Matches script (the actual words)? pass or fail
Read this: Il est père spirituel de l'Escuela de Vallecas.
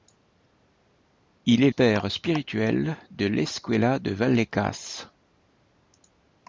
pass